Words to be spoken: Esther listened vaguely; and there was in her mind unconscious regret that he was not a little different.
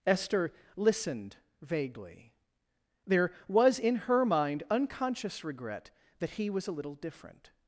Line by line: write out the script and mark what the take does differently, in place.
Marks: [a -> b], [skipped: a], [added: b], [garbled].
Esther listened vaguely; [skipped: and] there was in her mind unconscious regret that he was [skipped: not] a little different.